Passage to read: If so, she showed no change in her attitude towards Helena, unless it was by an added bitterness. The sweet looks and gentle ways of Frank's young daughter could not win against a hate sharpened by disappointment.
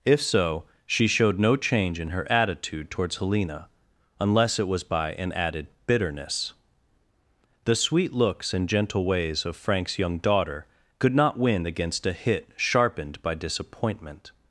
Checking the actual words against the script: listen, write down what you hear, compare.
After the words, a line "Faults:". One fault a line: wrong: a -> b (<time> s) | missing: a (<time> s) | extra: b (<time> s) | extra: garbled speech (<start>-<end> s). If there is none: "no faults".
If so, she showed no change in her attitude towards Helena, unless it was by an added bitterness. The sweet looks and gentle ways of Frank's young daughter could not win against a hit sharpened by disappointment.
Faults:
wrong: hate -> hit (12.1 s)